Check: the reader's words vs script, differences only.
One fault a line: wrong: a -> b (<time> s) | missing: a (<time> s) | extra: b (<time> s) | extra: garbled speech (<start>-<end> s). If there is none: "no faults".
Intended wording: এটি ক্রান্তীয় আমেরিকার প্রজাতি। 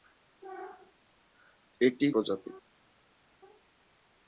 missing: ক্রান্তীয় আমেরিকার (2.1 s)